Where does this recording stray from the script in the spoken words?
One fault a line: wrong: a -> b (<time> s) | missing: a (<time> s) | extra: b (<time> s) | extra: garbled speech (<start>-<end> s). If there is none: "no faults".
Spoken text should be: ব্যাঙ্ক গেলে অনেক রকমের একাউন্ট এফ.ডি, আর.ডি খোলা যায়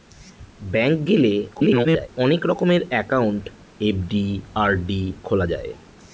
extra: garbled speech (1.5-2.1 s)